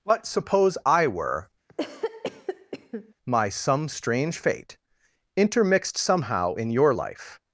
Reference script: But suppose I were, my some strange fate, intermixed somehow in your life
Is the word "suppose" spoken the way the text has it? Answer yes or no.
yes